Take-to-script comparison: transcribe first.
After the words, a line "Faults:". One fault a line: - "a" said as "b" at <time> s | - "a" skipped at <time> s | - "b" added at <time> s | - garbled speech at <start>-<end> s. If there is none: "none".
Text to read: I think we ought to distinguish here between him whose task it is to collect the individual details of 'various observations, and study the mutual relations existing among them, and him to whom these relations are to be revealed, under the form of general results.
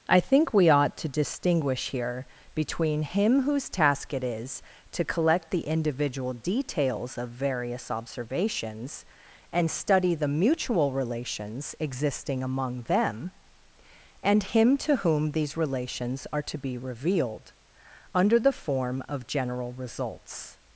I think we ought to distinguish here between him whose task it is to collect the individual details of 'various observations, and study the mutual relations existing among them, and him to whom these relations are to be revealed, under the form of general results.
Faults:
none